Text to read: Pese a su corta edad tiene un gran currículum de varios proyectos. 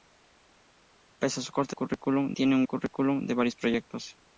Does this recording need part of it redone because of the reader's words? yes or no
yes